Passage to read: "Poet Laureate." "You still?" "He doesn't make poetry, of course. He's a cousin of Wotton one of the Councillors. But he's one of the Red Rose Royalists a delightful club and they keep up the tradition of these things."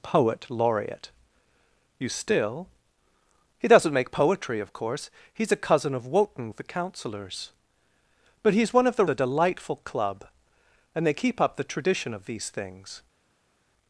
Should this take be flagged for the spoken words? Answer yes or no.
yes